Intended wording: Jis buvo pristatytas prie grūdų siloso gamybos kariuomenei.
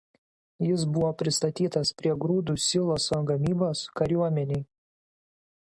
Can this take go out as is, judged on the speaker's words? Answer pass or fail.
pass